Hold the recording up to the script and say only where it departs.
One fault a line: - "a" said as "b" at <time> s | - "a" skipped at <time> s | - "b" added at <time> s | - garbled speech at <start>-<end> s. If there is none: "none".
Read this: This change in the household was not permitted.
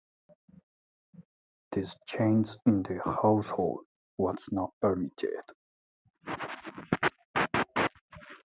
none